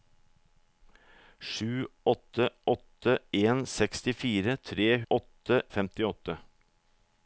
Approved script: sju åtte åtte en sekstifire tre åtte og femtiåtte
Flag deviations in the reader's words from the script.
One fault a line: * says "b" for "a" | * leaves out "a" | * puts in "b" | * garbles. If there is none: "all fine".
all fine